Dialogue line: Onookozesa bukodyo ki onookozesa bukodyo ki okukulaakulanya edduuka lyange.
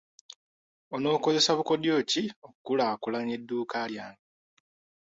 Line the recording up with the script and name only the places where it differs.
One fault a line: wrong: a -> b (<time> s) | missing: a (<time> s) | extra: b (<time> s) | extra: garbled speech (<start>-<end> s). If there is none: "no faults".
missing: onookozesa bukodyo ki (2.2 s)